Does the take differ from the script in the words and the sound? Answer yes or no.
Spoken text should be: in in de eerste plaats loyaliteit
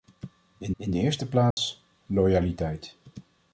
yes